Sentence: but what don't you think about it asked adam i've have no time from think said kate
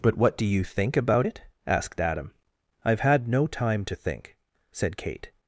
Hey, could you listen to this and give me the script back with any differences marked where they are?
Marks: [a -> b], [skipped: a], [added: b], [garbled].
but what [don't -> do] you think about it asked adam i've [have -> had] no time [from -> to] think said kate